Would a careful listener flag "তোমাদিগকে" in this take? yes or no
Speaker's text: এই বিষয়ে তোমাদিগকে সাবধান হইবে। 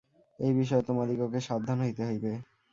no